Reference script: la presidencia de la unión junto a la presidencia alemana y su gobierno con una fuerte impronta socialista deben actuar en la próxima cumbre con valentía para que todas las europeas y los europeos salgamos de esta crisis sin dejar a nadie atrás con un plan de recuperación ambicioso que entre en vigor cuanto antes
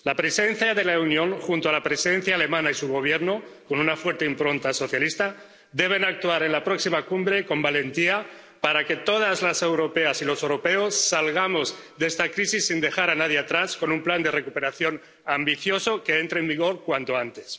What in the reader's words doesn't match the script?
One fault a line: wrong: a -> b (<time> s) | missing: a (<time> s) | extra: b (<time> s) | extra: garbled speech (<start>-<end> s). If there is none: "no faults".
no faults